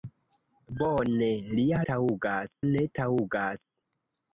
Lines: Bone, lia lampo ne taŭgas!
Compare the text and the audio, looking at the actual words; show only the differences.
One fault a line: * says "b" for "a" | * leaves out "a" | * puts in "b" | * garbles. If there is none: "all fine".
* says "taŭgas" for "lampo"